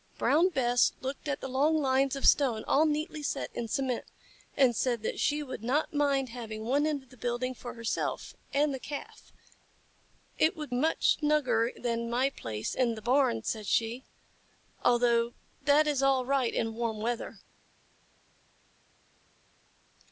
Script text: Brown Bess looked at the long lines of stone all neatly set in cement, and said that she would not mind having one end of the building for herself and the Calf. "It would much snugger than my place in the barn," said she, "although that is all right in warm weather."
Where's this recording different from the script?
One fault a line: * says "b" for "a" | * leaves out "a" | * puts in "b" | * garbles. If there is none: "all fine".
all fine